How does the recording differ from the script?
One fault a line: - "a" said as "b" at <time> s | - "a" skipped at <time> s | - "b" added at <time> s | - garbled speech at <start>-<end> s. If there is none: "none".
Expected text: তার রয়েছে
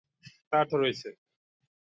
none